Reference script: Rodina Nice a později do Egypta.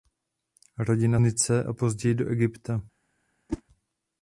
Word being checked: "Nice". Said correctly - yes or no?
yes